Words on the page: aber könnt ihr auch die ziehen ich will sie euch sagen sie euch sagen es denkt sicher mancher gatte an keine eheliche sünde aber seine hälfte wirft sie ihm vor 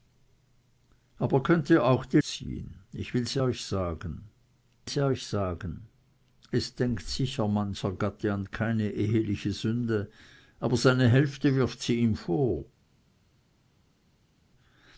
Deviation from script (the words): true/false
false